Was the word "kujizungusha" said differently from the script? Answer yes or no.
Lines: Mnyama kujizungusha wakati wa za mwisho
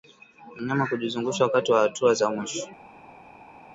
no